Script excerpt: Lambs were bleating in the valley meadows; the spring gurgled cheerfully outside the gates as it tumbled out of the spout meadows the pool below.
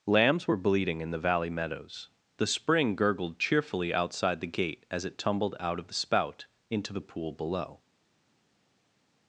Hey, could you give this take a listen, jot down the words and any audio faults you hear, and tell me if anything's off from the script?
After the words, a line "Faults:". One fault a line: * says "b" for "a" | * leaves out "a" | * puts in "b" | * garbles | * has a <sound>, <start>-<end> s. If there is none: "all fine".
Lambs were bleating in the valley meadows; the spring gurgled cheerfully outside the gate as it tumbled out of the spout into the pool below.
Faults:
* says "gate" for "gates"
* says "into" for "meadows"